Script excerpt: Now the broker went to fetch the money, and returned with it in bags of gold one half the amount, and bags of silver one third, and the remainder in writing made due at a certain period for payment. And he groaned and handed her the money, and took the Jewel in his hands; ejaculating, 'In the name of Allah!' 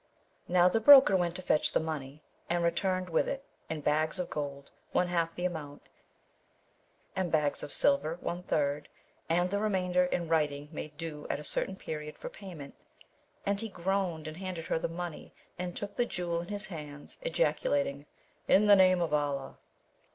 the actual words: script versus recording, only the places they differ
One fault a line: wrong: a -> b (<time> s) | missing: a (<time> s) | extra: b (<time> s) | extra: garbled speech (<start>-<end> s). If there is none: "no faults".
no faults